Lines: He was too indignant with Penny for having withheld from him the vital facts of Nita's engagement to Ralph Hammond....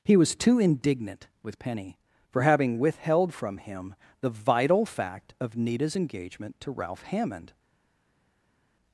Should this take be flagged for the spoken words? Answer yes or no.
yes